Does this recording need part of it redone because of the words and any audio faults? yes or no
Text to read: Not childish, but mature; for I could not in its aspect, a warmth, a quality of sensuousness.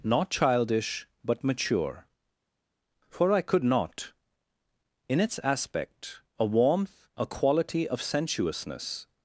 no